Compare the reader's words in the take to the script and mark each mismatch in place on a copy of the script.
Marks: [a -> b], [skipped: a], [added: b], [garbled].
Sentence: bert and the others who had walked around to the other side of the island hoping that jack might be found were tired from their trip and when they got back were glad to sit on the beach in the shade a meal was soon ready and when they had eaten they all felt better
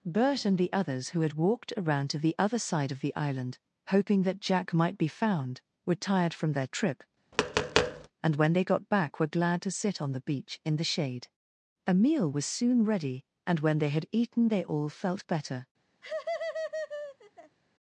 bert and the others who had walked around to the other side of the island hoping that jack might be found were tired from their trip and when they got back were glad to sit on the beach in the shade a meal was soon ready and when they had eaten they all felt better